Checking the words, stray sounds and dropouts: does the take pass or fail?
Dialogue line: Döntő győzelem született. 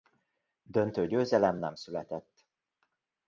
fail